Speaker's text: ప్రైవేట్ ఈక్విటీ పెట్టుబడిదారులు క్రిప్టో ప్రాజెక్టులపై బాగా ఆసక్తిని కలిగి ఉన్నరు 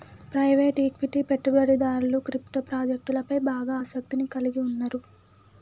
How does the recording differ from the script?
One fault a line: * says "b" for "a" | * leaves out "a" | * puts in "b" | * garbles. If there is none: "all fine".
all fine